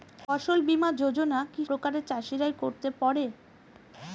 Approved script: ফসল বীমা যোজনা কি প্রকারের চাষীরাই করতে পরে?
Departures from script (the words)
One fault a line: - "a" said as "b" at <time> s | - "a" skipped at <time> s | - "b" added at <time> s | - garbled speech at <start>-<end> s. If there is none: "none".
none